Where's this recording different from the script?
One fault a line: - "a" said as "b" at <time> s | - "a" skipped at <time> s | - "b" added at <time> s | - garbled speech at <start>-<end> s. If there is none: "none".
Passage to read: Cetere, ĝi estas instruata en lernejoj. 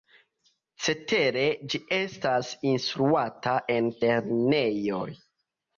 none